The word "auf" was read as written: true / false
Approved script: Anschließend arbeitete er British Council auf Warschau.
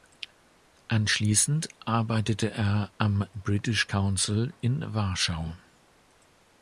false